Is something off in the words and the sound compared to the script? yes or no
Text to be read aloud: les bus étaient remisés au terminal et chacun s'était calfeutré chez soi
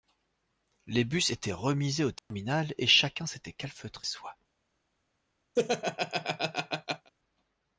yes